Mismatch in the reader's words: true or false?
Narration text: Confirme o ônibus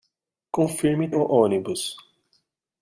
false